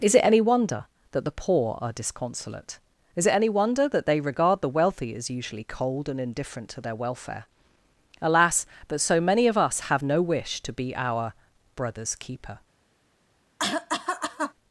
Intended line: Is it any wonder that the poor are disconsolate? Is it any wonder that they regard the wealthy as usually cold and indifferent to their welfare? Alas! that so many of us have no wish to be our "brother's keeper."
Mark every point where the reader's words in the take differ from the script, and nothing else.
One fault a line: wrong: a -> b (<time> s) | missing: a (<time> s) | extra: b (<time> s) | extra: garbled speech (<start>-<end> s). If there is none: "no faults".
wrong: that -> but (8.9 s)